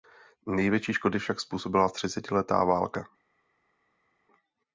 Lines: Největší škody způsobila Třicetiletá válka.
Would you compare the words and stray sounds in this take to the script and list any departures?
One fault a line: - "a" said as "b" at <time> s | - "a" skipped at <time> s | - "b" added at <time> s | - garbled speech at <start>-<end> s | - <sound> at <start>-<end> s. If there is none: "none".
- "však" added at 1.2 s